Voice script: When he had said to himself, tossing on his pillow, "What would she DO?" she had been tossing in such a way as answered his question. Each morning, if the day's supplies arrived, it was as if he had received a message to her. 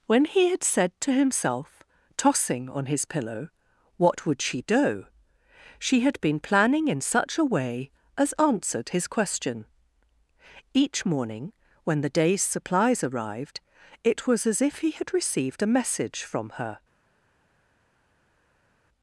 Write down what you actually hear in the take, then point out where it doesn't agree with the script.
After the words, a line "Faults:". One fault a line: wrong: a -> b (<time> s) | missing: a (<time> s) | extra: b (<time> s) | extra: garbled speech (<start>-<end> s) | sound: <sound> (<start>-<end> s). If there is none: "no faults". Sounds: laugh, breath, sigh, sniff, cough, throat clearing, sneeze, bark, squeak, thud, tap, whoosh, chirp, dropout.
When he had said to himself, tossing on his pillow, "What would she DO?" she had been planning in such a way as answered his question. Each morning, when the day's supplies arrived, it was as if he had received a message from her.
Faults:
wrong: tossing -> planning (6.4 s)
wrong: if -> when (11.8 s)
wrong: to -> from (16.2 s)